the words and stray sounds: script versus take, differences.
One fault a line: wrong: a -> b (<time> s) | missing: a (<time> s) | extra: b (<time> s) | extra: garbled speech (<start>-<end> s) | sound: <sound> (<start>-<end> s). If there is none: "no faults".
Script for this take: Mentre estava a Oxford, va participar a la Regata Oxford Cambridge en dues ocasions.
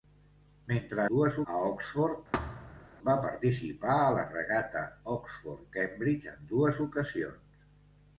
wrong: estava -> dues (1.1 s)
sound: thud (2.3-2.9 s)